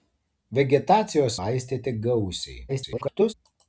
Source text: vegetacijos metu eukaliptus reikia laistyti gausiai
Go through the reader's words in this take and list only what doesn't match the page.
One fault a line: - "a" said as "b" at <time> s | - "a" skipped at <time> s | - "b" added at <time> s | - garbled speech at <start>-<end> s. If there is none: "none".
- "metu eukaliptus reikia" skipped at 1.4 s
- garbled speech at 2.7-3.3 s